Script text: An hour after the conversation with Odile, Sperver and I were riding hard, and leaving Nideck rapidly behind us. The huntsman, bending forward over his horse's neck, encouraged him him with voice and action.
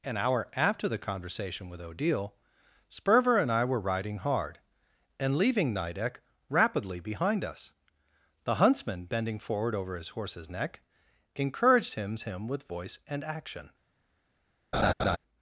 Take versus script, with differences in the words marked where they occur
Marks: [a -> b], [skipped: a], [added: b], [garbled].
An hour after the conversation with Odile, Sperver and I were riding hard, and leaving Nideck rapidly behind us. The huntsman, bending forward over his horse's neck, encouraged him him with voice and action.